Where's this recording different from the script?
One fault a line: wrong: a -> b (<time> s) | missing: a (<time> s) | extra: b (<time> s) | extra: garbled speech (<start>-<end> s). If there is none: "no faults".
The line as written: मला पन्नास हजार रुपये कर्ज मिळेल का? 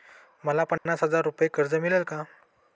no faults